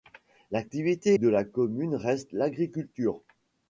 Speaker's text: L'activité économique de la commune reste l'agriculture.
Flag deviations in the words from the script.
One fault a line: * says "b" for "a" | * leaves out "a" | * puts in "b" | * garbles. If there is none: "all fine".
* leaves out "économique"